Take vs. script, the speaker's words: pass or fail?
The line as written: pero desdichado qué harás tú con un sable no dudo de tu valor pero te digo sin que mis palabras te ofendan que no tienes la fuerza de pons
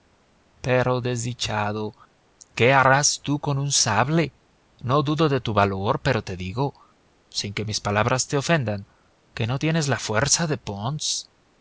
pass